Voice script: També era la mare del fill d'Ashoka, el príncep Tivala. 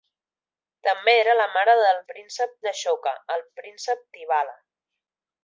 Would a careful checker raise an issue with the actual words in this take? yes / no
yes